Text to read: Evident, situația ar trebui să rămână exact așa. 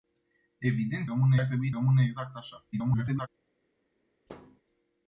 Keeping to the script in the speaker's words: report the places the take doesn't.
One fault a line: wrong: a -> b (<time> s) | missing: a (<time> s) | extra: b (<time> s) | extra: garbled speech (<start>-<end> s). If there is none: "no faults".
wrong: situația -> rămână (1.1 s)
missing: să (1.7 s)
extra: garbled speech (2.7-3.3 s)